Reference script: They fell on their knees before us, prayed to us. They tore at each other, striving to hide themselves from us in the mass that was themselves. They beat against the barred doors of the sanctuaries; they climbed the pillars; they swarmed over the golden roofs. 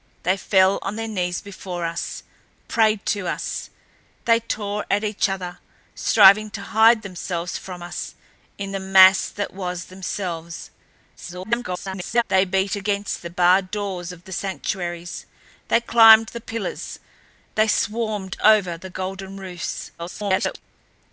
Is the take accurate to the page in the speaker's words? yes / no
no